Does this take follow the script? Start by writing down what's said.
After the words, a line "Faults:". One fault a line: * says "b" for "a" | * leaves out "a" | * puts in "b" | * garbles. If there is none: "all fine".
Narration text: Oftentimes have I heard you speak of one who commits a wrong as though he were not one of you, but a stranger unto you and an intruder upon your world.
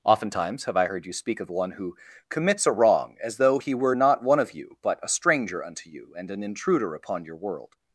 Oftentimes have I heard you speak of one who commits a wrong as though he were not one of you, but a stranger unto you and an intruder upon your world.
Faults:
all fine